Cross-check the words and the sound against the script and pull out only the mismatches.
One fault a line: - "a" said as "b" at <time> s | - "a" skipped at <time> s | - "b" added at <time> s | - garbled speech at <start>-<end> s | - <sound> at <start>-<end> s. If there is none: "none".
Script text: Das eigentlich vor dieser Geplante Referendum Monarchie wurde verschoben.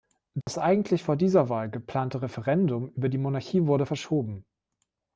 - dropout at 0.4-0.5 s
- "Wahl" added at 1.5 s
- "über die" added at 2.9 s